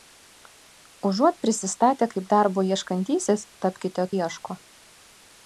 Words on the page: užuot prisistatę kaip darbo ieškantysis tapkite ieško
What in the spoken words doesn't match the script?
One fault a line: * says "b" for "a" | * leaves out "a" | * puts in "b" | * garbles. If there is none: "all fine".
all fine